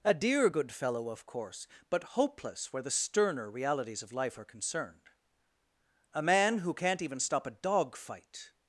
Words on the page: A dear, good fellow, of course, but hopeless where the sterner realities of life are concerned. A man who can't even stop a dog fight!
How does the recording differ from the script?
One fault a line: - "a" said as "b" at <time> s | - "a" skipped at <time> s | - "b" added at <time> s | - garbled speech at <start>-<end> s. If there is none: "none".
none